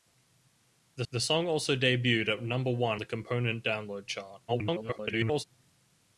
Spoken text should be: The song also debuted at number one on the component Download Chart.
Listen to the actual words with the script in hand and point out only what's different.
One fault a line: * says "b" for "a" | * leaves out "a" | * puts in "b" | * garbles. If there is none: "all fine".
* puts in "the"
* leaves out "on"
* garbles